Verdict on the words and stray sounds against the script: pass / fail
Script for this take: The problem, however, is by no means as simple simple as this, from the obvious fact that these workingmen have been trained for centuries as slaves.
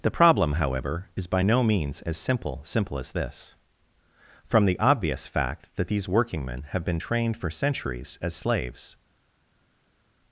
pass